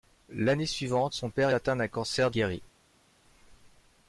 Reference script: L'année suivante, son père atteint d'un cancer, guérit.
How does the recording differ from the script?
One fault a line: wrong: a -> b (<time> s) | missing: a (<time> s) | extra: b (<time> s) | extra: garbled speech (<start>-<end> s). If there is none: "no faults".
no faults